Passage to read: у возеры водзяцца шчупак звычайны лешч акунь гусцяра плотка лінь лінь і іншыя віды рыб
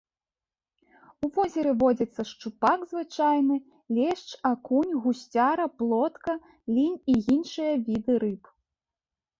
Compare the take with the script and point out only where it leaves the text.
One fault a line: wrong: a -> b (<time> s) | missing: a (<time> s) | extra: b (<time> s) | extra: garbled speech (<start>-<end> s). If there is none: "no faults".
missing: лінь (7.0 s)